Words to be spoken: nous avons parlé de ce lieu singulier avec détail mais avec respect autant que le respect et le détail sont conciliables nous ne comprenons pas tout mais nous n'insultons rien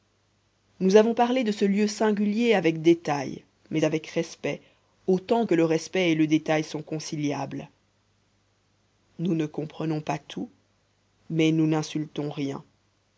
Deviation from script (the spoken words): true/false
false